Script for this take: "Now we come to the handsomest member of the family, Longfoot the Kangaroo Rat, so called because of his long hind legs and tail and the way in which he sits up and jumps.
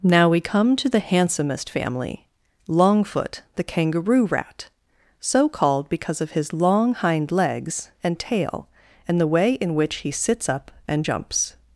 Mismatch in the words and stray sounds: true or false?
true